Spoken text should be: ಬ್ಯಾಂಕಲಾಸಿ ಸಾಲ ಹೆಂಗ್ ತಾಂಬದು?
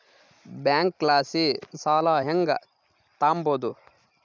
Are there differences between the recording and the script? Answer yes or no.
no